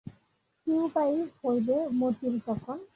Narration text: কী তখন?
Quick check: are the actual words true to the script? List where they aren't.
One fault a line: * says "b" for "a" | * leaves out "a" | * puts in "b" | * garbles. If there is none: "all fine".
* puts in "উপায় হইবে মতির"